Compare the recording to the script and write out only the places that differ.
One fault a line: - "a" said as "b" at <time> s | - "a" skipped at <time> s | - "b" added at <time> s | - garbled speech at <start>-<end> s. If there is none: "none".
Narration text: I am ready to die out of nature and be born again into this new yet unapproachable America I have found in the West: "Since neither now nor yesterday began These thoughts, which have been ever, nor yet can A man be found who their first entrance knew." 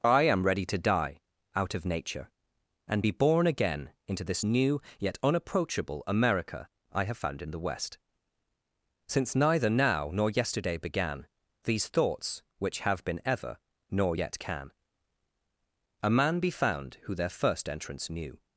none